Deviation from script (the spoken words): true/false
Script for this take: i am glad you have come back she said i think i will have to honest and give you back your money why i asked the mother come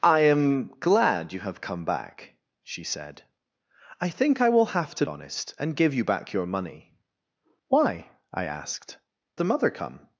false